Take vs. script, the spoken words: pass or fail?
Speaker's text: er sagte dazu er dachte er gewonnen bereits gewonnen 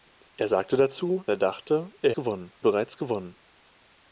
pass